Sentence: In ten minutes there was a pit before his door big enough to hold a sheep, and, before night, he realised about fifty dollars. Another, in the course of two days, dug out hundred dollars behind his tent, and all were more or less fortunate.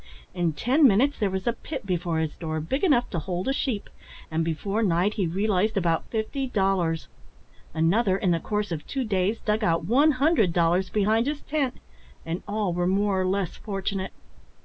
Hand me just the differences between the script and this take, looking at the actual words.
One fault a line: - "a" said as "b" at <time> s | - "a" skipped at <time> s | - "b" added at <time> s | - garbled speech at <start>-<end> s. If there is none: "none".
- "one" added at 9.8 s